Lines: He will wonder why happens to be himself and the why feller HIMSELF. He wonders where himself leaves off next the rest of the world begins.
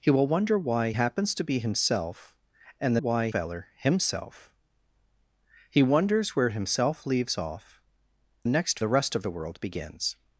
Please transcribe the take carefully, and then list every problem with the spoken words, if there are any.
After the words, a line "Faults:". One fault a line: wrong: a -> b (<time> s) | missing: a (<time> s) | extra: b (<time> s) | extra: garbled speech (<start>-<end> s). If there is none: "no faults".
He will wonder why happens to be himself and the why feller HIMSELF. He wonders where himself leaves off next the rest of the world begins.
Faults:
no faults